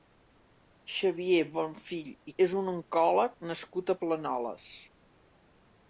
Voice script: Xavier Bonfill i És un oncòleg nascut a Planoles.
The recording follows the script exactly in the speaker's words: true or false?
true